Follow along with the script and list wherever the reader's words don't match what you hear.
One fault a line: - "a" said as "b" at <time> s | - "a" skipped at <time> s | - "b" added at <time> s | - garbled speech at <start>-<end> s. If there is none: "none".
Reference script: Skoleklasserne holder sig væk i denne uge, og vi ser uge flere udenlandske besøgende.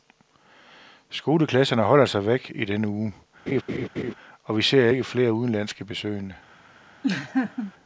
- "uge" said as "ikke" at 4.9 s